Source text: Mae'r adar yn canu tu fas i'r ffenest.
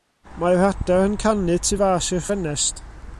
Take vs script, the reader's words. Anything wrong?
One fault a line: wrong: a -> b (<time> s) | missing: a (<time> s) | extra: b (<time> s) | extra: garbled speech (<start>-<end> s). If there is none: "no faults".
no faults